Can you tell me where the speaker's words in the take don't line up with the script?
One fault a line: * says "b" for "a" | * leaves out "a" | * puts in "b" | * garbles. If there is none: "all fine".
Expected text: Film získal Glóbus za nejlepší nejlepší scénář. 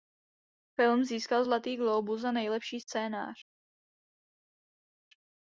* puts in "Zlatý"
* leaves out "nejlepší"